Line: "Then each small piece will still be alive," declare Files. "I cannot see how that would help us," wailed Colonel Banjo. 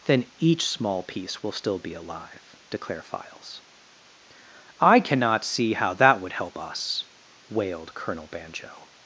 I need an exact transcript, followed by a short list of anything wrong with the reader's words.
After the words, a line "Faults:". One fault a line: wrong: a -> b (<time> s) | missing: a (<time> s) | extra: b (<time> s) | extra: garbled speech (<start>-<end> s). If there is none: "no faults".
"Then each small piece will still be alive," declare Files. "I cannot see how that would help us," wailed Colonel Banjo.
Faults:
no faults